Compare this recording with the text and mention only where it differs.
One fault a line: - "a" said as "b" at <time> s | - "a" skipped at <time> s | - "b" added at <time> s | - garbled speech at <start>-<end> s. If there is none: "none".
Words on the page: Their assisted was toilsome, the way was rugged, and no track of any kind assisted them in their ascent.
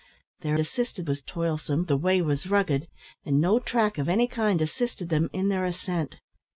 none